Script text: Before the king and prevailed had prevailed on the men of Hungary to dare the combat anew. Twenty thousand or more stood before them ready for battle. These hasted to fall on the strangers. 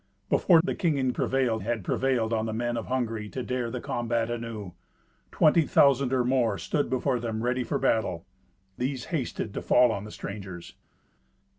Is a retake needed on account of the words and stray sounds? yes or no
no